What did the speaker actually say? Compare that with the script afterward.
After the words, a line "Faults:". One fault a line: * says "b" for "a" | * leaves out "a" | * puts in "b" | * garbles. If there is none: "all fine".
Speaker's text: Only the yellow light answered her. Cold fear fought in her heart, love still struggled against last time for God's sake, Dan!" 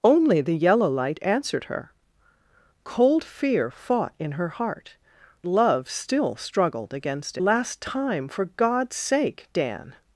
Only the yellow light answered her. Cold fear fought in her heart, love still struggled against last time for God's sake, Dan!"
Faults:
all fine